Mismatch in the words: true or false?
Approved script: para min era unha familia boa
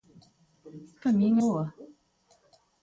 true